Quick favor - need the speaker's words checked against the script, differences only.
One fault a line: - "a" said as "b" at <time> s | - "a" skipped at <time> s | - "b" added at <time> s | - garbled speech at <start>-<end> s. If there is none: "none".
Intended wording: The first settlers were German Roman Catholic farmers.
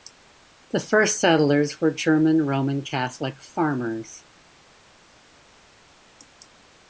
none